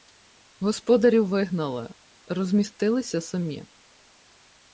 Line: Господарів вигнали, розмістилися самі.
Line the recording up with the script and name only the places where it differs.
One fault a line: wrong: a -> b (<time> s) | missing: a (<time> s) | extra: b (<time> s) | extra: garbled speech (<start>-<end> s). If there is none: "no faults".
no faults